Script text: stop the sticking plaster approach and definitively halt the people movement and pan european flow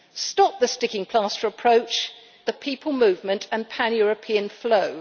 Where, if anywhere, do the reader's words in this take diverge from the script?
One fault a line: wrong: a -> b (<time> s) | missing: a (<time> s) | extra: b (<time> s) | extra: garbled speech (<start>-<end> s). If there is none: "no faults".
missing: and definitively halt (2.1 s)